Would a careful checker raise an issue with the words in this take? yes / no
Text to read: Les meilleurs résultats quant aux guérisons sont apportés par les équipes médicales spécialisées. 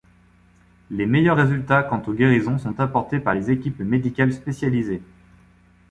no